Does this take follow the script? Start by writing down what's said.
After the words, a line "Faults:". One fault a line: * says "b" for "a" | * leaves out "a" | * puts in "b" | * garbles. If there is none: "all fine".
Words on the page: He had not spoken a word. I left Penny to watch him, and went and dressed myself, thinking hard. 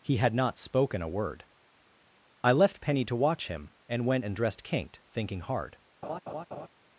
He had not spoken a word. I left Penny to watch him, and went and dressed kinked, thinking hard.
Faults:
* says "kinked" for "myself"